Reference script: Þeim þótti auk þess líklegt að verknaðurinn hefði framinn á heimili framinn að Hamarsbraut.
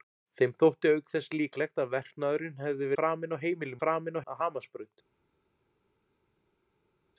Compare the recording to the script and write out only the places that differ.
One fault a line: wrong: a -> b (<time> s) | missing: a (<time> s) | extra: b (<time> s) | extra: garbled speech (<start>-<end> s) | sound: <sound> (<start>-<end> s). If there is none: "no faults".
no faults